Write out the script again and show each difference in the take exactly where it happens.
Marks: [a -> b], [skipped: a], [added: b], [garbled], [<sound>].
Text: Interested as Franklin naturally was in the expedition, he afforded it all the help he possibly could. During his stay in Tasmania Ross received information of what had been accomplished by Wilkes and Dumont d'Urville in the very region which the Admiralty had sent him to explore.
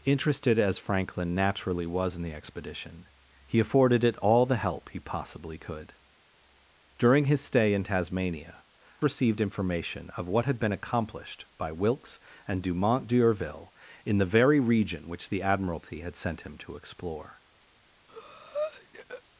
Interested as Franklin naturally was in the expedition, he afforded it all the help he possibly could. During his stay in Tasmania [skipped: Ross] received information of what had been accomplished by Wilkes and Dumont d'Urville in the very region which the Admiralty had sent him to explore. [breath]